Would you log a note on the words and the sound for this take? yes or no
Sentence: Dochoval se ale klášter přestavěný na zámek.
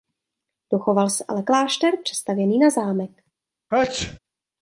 yes